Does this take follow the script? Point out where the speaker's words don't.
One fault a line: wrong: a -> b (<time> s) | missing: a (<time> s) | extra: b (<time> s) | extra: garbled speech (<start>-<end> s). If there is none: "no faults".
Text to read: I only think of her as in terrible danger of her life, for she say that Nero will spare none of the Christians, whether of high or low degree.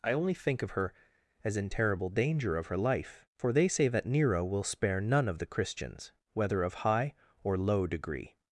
wrong: she -> they (3.5 s)